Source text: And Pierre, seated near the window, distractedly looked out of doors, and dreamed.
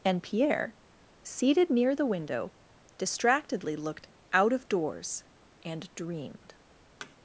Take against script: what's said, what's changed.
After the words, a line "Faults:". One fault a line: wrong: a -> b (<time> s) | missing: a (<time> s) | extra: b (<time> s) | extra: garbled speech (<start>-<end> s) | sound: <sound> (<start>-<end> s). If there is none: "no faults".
And Pierre, seated near the window, distractedly looked out of doors, and dreamed.
Faults:
sound: thud (7.0-7.2 s)